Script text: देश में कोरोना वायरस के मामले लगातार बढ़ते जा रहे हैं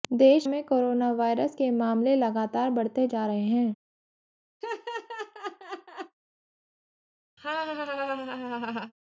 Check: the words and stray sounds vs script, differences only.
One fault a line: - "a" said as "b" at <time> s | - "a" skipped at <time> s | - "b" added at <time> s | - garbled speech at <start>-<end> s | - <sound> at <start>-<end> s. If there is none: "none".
- laugh at 4.6-6.2 s
- laugh at 7.4-8.9 s